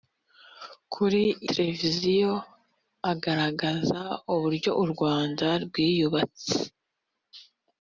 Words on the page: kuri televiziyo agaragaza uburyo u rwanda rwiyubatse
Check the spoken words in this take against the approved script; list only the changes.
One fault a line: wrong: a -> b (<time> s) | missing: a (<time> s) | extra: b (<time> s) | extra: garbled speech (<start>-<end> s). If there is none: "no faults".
no faults